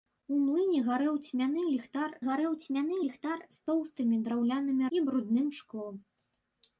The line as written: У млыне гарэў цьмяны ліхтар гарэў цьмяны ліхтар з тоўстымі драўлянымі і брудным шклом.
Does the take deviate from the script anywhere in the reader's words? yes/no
no